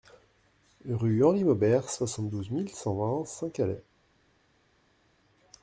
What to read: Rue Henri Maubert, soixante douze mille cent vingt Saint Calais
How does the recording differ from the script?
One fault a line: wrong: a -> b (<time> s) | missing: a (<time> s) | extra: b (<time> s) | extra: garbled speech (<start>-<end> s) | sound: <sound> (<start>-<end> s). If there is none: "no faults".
no faults